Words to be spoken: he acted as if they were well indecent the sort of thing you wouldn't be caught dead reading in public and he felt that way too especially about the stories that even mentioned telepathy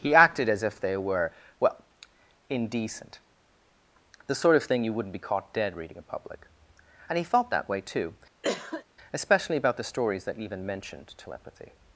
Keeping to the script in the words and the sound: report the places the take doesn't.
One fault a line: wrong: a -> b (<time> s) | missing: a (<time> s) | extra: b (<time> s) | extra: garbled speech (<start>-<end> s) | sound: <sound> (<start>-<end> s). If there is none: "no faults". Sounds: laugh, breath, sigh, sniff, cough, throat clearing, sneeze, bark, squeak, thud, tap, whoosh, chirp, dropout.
sound: cough (8.4-8.8 s)